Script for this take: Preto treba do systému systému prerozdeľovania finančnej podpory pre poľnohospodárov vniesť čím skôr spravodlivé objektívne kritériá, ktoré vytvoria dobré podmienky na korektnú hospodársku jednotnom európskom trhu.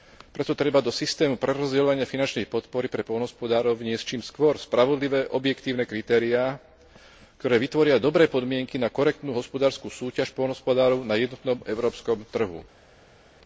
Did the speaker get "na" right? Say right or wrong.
right